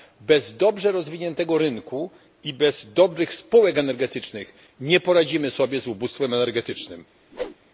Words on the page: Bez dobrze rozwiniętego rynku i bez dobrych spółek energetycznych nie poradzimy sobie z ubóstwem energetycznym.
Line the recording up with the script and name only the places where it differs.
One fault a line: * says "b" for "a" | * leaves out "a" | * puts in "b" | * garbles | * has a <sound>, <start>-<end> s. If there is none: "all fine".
* has a whoosh, 7.3-7.6 s